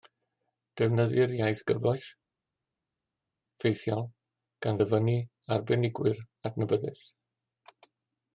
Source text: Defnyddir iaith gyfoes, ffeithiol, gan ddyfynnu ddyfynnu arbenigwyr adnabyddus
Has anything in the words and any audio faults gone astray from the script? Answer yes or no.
yes